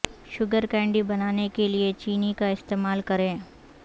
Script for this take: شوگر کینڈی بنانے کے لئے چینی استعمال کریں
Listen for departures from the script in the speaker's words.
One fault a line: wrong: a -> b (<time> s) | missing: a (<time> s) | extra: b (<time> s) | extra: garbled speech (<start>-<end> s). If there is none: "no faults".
extra: کا (2.4 s)